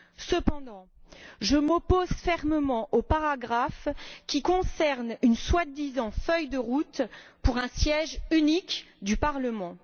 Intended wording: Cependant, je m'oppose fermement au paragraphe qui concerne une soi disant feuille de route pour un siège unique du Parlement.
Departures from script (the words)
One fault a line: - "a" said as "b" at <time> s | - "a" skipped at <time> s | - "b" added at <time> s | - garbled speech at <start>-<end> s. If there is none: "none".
none